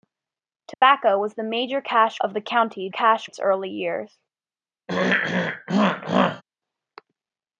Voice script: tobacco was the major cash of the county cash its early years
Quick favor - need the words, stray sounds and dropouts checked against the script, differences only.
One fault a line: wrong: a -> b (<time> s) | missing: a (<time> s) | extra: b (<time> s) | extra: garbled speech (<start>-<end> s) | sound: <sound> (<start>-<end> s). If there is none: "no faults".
sound: dropout (0.7-0.8 s)
sound: throat clearing (4.9-6.4 s)